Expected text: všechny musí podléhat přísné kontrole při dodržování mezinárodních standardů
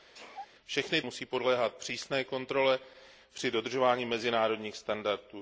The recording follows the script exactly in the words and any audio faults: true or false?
false